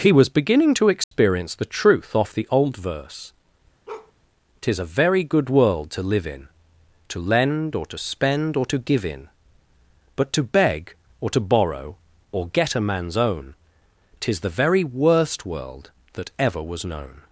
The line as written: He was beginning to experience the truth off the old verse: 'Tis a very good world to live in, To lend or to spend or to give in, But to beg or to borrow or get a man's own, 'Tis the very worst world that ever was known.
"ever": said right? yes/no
yes